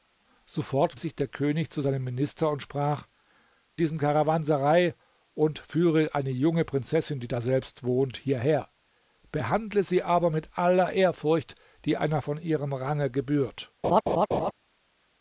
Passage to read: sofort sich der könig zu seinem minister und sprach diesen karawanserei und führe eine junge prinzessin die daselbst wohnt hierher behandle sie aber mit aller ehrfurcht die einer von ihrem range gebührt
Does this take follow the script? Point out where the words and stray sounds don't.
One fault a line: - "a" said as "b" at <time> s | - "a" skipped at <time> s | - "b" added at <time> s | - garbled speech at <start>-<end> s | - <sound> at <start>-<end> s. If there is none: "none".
- laugh at 13.8-14.5 s